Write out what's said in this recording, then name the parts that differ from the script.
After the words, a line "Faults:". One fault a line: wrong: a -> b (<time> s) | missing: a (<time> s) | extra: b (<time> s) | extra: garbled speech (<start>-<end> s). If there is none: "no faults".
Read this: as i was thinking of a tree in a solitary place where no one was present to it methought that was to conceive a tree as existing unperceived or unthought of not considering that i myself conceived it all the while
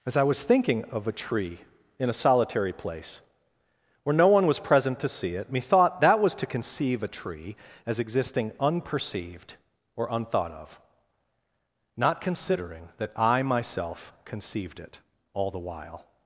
as i was thinking of a tree in a solitary place where no one was present to see it methought that was to conceive a tree as existing unperceived or unthought of not considering that i myself conceived it all the while
Faults:
extra: see (5.1 s)